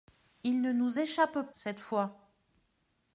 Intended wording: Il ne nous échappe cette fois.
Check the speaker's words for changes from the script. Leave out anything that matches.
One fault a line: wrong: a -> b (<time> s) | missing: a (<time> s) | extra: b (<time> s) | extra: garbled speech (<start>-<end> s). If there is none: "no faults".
no faults